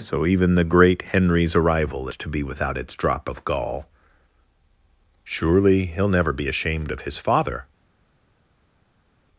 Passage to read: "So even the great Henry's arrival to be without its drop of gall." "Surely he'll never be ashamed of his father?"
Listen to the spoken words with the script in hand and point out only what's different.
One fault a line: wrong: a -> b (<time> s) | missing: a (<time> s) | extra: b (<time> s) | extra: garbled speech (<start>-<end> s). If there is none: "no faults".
no faults